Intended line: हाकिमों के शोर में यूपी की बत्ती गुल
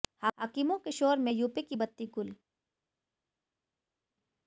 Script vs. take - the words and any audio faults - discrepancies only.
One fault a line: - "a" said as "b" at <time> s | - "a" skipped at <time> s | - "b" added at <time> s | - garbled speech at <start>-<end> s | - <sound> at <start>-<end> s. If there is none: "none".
none